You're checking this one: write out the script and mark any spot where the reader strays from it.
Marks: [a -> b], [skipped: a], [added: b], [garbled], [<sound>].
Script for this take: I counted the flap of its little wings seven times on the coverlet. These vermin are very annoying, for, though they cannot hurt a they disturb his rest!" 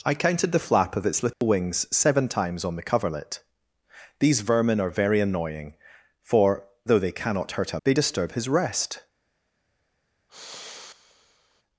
I counted the flap of its little [dropout] wings seven times on the coverlet. These vermin are very annoying, for, though they cannot hurt a they disturb his rest!" [sigh]